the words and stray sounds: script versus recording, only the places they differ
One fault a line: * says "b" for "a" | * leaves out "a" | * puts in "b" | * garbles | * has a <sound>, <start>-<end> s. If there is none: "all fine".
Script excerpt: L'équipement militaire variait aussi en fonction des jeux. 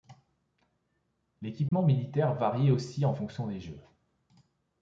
* has a dropout, 1.7-1.7 s